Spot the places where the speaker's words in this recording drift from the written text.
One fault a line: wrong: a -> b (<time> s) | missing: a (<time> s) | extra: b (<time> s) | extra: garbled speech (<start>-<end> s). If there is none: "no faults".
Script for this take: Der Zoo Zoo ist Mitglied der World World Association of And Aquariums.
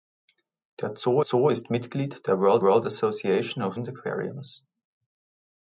no faults